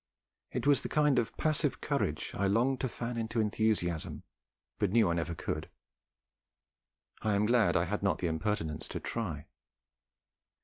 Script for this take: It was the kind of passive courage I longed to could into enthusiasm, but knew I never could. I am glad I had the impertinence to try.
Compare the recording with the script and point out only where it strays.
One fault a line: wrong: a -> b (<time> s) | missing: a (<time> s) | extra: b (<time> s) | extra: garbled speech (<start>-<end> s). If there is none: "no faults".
wrong: could -> fan (2.9 s)
extra: not (8.0 s)